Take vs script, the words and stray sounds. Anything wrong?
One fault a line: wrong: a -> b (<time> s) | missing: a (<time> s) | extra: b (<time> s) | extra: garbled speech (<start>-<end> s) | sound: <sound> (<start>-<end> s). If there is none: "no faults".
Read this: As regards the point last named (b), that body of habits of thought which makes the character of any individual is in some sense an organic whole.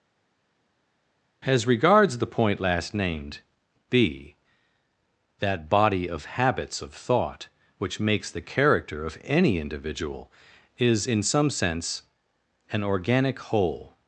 no faults